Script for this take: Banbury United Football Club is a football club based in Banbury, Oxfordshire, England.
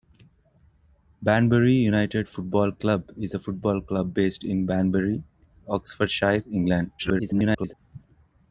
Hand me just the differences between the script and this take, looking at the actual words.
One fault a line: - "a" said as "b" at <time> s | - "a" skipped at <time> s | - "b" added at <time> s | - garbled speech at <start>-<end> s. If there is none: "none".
- garbled speech at 7.0-7.7 s